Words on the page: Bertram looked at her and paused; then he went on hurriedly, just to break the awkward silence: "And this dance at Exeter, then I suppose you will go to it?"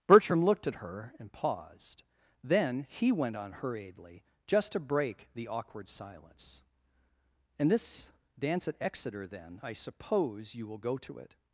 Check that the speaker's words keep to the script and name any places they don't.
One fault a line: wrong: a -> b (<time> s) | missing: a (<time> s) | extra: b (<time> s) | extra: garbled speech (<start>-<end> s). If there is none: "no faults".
no faults